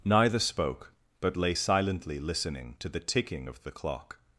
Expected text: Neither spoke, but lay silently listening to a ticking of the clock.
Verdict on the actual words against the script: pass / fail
fail